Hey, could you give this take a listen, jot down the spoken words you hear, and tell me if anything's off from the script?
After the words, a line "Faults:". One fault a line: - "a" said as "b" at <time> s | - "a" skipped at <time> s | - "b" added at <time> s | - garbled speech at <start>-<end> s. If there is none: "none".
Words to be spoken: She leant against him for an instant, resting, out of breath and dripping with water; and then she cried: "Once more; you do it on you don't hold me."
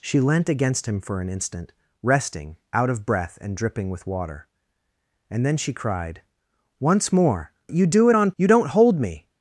She leant against him for an instant, resting, out of breath and dripping with water; and then she cried: "Once more; you do it on you don't hold me."
Faults:
none